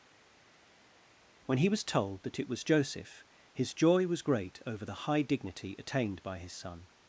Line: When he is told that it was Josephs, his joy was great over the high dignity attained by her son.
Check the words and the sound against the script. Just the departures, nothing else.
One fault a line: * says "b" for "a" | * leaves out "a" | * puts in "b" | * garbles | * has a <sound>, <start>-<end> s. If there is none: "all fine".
* says "was" for "is"
* says "Joseph" for "Josephs"
* says "his" for "her"